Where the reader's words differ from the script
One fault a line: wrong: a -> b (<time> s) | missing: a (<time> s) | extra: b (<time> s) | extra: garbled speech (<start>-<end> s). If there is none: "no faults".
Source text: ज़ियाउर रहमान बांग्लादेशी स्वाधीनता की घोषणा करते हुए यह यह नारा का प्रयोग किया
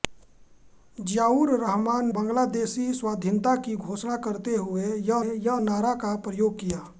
no faults